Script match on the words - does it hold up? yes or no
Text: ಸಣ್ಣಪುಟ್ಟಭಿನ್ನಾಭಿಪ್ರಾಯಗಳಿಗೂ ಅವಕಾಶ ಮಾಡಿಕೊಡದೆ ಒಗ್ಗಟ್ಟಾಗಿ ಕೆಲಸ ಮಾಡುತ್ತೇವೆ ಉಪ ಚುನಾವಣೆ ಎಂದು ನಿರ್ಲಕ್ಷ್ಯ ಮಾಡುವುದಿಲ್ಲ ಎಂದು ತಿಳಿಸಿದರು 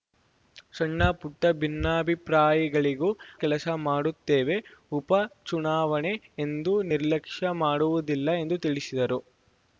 no